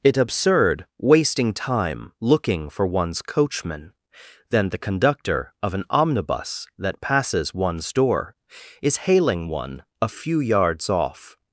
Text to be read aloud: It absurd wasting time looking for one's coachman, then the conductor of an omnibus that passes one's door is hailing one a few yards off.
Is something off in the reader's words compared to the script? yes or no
no